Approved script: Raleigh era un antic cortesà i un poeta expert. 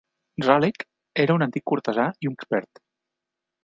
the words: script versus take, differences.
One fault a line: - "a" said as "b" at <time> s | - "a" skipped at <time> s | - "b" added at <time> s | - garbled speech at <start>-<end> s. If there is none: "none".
- "poeta" skipped at 2.4 s